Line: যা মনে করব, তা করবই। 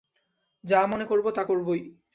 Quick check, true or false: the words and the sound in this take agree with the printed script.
true